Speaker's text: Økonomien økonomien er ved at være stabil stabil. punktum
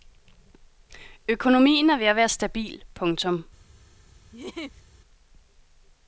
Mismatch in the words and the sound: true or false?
true